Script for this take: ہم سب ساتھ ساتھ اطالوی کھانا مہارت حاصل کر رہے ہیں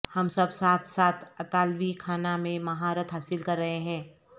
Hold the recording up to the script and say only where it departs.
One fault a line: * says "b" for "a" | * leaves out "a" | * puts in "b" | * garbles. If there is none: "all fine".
* puts in "میں"